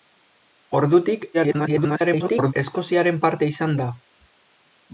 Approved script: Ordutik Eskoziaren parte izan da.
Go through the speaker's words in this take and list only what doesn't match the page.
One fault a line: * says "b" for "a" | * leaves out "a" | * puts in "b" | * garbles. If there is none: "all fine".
* garbles